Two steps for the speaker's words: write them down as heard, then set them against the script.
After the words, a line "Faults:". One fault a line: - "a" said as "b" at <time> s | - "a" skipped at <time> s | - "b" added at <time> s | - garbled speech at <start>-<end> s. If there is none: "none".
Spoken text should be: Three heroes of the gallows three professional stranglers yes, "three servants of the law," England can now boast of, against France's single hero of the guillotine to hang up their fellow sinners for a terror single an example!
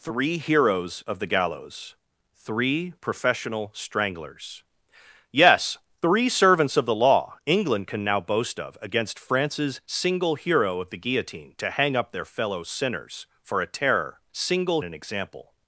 Three heroes of the gallows three professional stranglers yes, "three servants of the law," England can now boast of, against France's single hero of the guillotine to hang up their fellow sinners for a terror single an example!
Faults:
none